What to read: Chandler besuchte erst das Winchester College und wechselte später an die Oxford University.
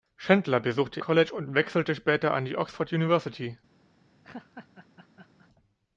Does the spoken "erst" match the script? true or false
false